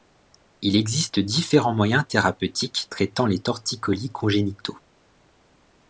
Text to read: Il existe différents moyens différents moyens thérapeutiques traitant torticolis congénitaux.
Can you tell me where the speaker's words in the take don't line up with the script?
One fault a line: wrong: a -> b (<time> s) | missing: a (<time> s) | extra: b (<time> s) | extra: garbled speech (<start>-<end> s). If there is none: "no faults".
missing: différents moyens (2.0 s)
extra: les (3.2 s)